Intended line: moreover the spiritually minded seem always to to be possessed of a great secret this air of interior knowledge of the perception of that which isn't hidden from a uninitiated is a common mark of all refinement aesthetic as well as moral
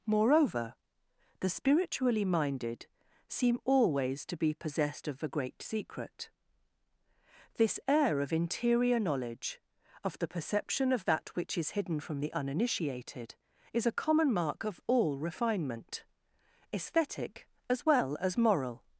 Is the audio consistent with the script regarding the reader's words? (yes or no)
no